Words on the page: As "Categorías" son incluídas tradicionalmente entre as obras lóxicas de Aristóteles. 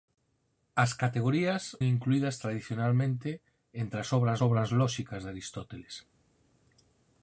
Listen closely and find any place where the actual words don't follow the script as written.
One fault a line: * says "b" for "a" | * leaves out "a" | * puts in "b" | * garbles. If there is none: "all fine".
* leaves out "son"
* puts in "obras"